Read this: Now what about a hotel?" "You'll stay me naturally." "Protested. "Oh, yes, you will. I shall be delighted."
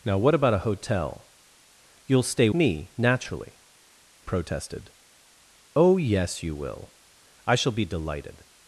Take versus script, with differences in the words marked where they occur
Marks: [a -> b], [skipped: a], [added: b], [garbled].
Now what about a hotel?" "You'll stay me naturally." "Protested. "Oh, yes, you will. I shall be delighted."